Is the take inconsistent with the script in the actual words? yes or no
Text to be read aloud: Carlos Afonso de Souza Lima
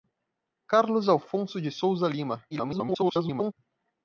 yes